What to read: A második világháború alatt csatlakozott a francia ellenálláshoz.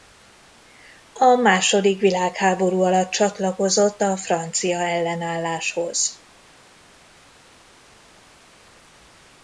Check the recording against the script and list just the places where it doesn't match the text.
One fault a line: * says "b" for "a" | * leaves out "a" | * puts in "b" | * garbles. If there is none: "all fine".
all fine